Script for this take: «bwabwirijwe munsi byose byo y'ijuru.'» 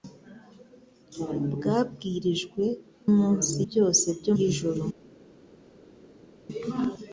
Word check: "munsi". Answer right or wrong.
right